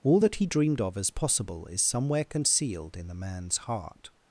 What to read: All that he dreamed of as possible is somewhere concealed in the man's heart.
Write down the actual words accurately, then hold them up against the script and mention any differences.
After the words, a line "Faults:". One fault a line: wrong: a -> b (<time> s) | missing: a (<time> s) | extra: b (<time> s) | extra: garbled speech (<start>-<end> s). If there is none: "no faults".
All that he dreamed of as possible is somewhere concealed in the man's heart.
Faults:
no faults